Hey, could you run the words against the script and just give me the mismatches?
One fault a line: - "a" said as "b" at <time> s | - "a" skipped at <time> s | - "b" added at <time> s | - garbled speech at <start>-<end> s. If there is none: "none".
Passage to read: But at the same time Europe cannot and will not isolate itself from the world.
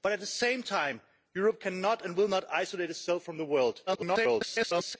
- garbled speech at 3.9-5.0 s